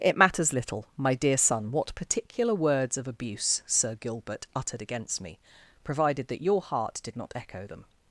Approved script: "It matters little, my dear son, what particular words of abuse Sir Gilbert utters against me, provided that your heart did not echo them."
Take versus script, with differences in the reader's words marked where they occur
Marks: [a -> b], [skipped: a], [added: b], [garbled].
"It matters little, my dear son, what particular words of abuse Sir Gilbert [utters -> uttered] against me, provided that your heart did not echo them."